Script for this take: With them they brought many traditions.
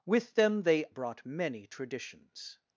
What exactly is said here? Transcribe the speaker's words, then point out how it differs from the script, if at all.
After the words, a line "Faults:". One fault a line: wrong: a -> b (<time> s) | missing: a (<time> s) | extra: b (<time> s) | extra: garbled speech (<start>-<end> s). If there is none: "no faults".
With them they brought many traditions.
Faults:
no faults